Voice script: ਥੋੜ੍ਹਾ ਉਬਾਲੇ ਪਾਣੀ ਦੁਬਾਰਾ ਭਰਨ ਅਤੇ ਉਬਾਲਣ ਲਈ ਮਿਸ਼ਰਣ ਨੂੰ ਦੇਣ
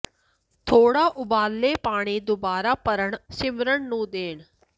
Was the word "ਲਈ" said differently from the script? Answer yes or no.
yes